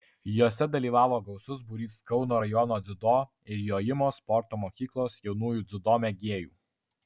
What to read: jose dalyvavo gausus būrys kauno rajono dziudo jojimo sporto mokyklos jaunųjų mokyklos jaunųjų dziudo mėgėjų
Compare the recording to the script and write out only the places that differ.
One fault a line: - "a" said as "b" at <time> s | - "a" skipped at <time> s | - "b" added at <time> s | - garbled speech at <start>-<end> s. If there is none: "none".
- "ir" added at 3.5 s
- "mokyklos jaunųjų" skipped at 5.7 s